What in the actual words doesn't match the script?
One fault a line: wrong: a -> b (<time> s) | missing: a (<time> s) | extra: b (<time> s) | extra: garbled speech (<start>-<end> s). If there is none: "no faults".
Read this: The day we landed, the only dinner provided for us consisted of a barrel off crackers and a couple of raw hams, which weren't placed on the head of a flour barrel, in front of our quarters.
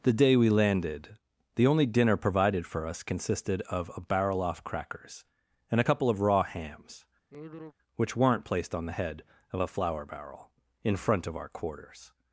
no faults